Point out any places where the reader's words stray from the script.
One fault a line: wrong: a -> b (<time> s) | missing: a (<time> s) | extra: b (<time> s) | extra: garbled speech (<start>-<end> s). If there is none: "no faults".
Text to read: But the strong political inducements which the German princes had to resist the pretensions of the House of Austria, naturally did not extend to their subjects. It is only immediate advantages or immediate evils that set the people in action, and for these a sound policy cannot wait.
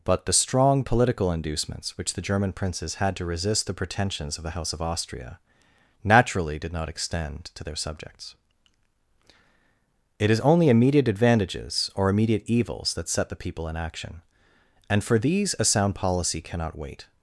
no faults